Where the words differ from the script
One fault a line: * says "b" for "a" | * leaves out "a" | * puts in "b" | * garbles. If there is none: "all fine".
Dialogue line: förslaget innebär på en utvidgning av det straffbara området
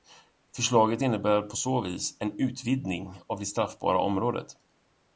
* puts in "så vis"